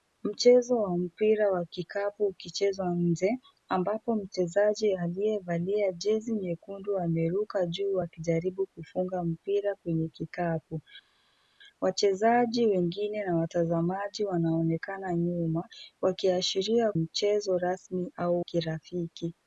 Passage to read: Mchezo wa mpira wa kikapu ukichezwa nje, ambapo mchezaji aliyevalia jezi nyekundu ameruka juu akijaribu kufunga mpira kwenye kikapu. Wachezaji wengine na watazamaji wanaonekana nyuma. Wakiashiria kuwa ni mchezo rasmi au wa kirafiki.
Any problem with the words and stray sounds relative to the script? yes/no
yes